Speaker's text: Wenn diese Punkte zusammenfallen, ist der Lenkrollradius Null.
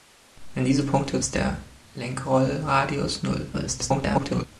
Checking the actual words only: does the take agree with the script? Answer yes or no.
no